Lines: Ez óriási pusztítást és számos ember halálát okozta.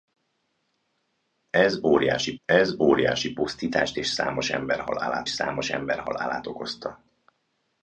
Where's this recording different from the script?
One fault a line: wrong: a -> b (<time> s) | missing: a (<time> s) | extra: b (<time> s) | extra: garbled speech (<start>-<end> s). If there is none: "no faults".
extra: ez óriási (2.4 s)
extra: számos ember halálát (5.3 s)